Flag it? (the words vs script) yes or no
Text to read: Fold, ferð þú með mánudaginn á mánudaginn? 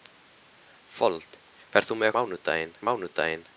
no